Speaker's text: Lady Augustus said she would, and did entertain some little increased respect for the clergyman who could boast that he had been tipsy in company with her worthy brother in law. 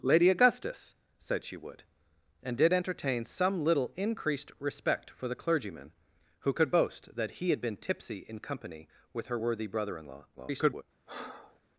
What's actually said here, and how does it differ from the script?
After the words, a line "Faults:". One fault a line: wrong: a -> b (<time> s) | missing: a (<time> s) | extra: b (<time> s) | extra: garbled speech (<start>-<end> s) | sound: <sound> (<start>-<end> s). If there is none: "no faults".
Lady Augustus said she would, and did entertain some little increased respect for the clergyman who could boast that he had been tipsy in company with her worthy brother in law. [garbled]
Faults:
extra: garbled speech (10.4-10.8 s)
sound: breath (11.1-11.6 s)